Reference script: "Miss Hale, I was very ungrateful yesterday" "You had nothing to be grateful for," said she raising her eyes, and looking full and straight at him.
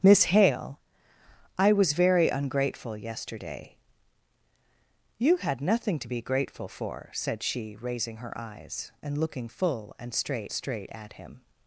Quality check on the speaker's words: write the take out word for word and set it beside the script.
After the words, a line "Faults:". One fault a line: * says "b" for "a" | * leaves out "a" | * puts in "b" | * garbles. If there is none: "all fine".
"Miss Hale, I was very ungrateful yesterday" "You had nothing to be grateful for," said she raising her eyes, and looking full and straight straight at him.
Faults:
* puts in "straight"